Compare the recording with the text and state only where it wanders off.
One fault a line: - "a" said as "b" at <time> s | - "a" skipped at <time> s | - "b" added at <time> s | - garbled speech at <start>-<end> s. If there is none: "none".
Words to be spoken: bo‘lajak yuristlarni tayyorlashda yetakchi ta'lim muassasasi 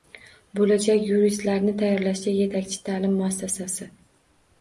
none